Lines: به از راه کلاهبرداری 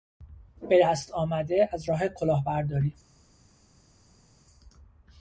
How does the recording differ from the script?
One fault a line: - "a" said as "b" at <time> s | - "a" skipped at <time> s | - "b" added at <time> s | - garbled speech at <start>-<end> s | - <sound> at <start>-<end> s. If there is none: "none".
- "دست آمده" added at 0.8 s